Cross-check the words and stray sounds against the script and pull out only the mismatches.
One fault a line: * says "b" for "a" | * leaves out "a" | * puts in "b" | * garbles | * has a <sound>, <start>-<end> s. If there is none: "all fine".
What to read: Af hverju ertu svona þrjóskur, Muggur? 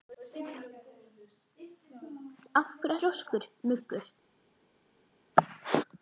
* leaves out "ertu svona"